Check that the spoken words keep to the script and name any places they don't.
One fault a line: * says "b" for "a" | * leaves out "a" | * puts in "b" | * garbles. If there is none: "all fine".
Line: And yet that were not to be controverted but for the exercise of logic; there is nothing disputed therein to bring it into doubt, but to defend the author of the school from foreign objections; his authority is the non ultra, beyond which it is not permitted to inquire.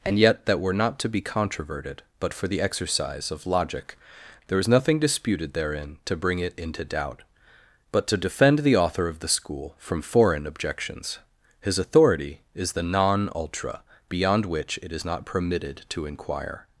all fine